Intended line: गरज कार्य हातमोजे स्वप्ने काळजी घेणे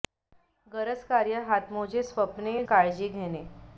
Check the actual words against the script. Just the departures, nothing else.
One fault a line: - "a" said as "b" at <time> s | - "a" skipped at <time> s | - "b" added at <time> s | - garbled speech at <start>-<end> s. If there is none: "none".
none